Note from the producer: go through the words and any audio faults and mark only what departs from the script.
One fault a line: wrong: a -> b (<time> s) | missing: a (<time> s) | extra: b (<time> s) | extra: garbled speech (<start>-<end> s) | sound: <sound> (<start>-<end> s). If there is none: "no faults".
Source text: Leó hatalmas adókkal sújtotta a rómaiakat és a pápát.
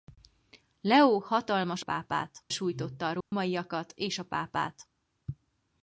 wrong: adókkal -> pápát (1.8 s)
sound: dropout (3.2-3.3 s)